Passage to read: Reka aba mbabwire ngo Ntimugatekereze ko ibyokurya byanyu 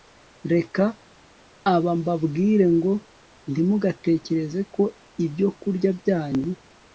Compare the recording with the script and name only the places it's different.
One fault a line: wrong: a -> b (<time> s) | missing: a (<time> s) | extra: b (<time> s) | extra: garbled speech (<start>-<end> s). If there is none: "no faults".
no faults